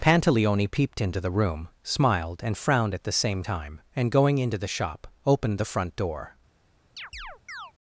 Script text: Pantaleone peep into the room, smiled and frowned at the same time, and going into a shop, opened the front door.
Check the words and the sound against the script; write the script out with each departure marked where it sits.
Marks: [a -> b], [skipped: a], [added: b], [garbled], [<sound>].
Pantaleone [peep -> peeped] into the room, smiled and frowned at the same time, and going into [a -> the] shop, opened the front door. [chirp]